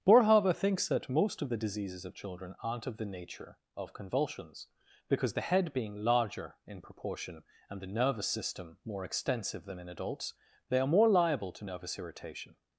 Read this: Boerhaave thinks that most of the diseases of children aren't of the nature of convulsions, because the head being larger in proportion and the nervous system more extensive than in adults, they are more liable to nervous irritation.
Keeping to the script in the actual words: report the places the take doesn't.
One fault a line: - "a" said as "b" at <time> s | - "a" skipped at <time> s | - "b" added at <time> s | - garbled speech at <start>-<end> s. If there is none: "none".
none